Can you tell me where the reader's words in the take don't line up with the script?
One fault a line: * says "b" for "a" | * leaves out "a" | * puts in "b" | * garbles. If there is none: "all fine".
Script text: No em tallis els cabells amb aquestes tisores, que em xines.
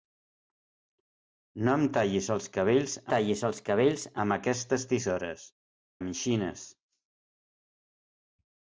* puts in "tallis els cabells"
* leaves out "que"